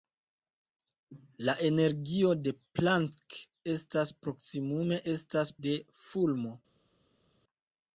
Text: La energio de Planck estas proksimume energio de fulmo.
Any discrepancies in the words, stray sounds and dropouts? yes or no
yes